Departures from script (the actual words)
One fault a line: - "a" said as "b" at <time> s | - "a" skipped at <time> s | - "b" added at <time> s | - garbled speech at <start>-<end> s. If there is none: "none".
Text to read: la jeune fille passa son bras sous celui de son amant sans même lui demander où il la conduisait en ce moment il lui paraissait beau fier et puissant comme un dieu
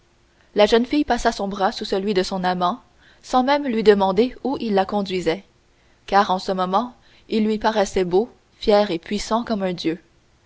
- "car" added at 6.1 s